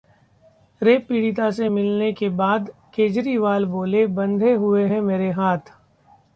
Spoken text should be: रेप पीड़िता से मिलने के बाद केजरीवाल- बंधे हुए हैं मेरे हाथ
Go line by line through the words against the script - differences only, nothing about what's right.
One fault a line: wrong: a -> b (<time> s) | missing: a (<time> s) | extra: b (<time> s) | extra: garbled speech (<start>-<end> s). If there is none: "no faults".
extra: बोले (3.6 s)